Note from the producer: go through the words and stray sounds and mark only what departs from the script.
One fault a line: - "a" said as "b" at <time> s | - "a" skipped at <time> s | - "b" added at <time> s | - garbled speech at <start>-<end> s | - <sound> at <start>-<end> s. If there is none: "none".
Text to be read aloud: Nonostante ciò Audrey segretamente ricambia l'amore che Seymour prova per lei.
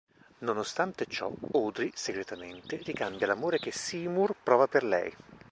none